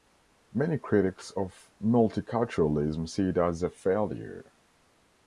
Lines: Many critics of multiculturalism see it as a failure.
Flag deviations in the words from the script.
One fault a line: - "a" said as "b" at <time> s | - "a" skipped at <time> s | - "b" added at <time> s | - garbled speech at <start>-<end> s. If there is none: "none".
none